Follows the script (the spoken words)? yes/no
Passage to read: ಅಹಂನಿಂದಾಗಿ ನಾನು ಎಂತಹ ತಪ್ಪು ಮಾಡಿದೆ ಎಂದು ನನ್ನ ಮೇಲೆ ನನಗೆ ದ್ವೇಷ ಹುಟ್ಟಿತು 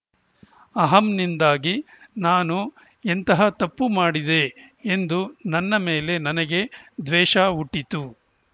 yes